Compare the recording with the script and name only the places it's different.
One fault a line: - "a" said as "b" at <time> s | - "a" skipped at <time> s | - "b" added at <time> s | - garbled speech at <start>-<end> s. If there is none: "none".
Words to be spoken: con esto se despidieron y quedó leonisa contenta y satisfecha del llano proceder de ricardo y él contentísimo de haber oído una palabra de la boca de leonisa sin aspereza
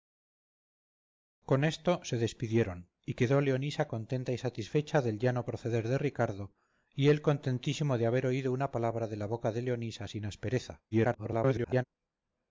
- garbled speech at 10.9-11.8 s